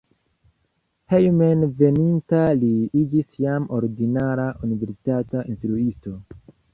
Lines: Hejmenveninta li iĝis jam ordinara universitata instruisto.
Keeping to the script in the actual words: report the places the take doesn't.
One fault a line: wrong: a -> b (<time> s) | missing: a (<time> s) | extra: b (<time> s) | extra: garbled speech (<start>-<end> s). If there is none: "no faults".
no faults